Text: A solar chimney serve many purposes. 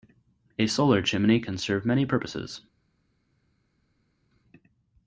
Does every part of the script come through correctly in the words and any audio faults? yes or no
no